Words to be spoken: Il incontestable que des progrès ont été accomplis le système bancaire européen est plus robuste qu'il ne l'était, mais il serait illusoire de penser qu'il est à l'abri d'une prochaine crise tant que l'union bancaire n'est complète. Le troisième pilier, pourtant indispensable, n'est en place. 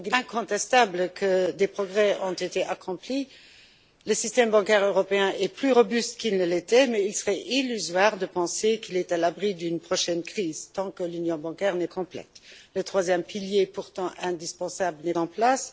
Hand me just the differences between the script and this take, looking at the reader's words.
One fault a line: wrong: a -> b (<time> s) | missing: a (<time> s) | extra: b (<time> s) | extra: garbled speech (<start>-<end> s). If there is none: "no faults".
no faults